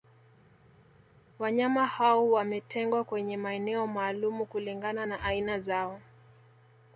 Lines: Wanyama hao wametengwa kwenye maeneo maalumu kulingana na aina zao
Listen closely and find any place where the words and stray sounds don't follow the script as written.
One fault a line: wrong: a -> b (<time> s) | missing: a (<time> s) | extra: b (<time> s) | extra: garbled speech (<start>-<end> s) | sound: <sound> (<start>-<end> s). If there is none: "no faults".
no faults